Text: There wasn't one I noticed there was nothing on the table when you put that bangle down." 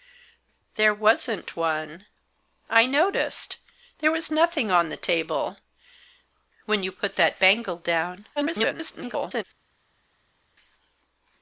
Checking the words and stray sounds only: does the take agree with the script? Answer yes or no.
no